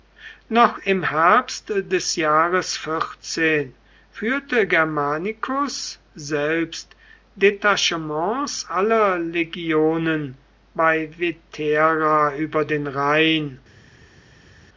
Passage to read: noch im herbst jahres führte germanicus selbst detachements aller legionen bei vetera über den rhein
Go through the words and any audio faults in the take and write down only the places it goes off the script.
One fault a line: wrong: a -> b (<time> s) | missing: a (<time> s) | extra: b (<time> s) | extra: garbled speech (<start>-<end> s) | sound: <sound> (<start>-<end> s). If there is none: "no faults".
extra: des (1.9 s)